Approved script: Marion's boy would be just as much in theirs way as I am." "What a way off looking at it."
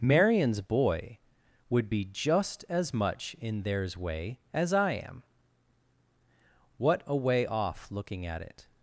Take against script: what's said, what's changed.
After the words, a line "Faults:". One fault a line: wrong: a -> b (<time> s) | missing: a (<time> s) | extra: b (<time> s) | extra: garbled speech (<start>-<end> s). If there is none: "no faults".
Marion's boy would be just as much in theirs way as I am." "What a way off looking at it."
Faults:
no faults